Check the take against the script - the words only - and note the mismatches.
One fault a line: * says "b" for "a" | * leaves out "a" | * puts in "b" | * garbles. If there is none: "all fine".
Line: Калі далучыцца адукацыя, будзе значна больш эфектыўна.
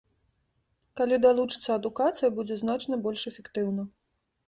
all fine